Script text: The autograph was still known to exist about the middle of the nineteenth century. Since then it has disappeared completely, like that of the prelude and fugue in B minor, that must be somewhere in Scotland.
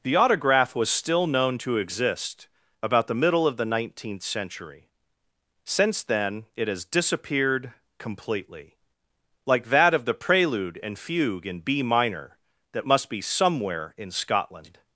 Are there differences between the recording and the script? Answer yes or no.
no